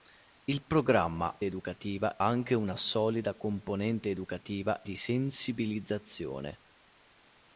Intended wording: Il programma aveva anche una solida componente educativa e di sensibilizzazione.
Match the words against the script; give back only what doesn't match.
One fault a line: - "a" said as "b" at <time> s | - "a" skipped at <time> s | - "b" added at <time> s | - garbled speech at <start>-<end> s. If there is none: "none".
- "aveva" said as "educativa" at 1.4 s
- "e" skipped at 4.8 s